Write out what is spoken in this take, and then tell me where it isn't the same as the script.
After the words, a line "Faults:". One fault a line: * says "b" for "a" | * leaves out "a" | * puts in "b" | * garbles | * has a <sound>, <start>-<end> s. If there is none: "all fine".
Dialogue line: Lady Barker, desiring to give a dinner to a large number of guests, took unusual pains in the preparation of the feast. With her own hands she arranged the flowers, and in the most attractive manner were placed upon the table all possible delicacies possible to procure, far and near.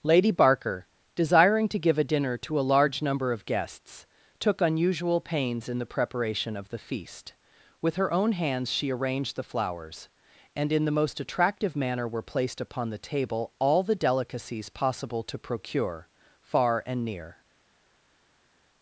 Lady Barker, desiring to give a dinner to a large number of guests, took unusual pains in the preparation of the feast. With her own hands she arranged the flowers, and in the most attractive manner were placed upon the table all the delicacies possible to procure, far and near.
Faults:
* says "the" for "possible"